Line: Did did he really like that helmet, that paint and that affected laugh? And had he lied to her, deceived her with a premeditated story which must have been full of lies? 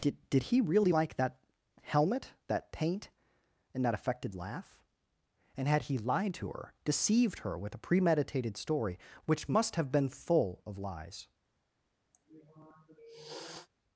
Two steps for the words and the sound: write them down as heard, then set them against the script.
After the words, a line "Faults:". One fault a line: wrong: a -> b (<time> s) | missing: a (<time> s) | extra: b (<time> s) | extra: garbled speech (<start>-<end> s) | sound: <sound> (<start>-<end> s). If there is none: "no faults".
Did did he really like that helmet, that paint and that affected laugh? And had he lied to her, deceived her with a premeditated story which must have been full of lies?
Faults:
sound: sniff (12.1-13.7 s)